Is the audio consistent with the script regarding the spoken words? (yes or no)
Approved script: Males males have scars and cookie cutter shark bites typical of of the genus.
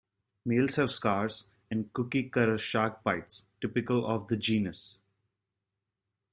no